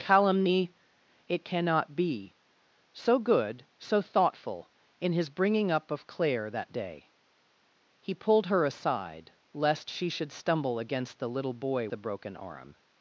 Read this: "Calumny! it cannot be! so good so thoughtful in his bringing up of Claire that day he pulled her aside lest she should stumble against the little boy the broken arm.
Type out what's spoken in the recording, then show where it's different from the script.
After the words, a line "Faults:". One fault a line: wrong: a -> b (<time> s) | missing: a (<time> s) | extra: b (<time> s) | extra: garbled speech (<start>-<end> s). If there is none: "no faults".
"Calumny! it cannot be! so good so thoughtful in his bringing up of Claire that day he pulled her aside lest she should stumble against the little boy the broken arm.
Faults:
no faults